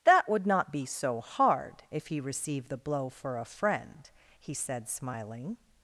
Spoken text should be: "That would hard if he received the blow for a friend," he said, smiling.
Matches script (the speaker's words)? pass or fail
fail